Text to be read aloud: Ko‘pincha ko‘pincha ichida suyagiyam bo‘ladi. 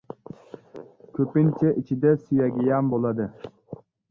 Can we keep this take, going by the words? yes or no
no